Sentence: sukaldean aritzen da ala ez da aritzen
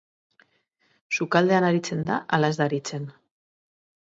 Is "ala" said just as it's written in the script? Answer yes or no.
yes